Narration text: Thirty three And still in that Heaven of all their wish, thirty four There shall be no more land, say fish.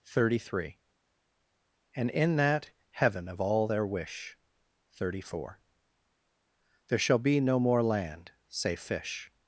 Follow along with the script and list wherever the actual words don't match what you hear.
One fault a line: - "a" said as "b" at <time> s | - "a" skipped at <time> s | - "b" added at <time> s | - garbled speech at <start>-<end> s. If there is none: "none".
- "still" skipped at 2.1 s